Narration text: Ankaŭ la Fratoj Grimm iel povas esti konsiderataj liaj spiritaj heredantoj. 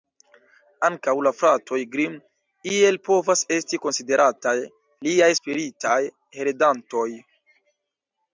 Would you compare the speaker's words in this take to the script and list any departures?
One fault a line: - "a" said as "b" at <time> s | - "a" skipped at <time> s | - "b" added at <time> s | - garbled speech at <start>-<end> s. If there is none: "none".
none